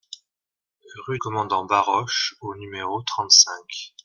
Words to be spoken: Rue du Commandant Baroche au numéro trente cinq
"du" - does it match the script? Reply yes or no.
no